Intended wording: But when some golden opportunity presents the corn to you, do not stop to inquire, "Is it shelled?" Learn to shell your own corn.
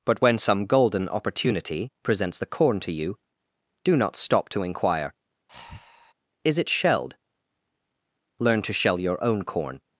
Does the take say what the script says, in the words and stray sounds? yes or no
no